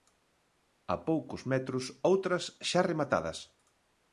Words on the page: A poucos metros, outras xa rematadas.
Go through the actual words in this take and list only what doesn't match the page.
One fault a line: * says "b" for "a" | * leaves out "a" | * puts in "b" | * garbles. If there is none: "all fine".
all fine